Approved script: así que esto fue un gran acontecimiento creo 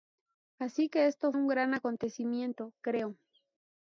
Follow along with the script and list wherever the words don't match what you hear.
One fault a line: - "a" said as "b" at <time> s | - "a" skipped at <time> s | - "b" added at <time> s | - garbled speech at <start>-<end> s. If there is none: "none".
- "fue" skipped at 1.3 s